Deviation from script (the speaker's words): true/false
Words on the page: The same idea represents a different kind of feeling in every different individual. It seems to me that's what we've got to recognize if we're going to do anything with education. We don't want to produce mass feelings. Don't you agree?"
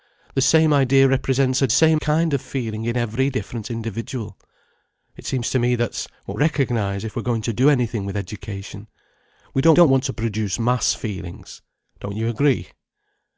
true